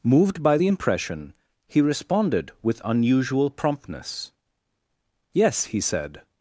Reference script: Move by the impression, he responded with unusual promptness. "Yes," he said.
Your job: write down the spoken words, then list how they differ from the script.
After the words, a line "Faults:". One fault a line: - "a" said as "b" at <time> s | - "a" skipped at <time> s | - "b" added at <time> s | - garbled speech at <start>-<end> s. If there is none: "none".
Moved by the impression, he responded with unusual promptness. "Yes," he said.
Faults:
- "Move" said as "Moved" at 0.0 s